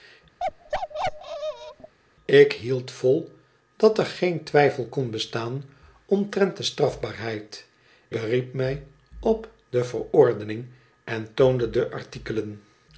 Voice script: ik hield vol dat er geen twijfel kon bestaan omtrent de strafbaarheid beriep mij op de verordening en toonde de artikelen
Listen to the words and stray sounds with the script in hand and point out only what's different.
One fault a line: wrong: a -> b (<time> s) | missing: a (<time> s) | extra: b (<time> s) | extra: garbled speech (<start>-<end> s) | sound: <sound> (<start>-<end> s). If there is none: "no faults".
sound: bark (0.4-1.9 s)